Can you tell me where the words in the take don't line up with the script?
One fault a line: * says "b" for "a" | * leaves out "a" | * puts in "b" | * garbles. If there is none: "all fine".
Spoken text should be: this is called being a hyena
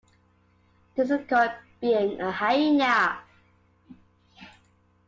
all fine